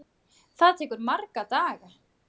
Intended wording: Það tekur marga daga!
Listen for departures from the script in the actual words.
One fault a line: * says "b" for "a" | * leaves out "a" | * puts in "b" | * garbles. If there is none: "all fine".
all fine